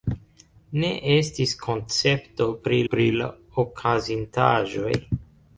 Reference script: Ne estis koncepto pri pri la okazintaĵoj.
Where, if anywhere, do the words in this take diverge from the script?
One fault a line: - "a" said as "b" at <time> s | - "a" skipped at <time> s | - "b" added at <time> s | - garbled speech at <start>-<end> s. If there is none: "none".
none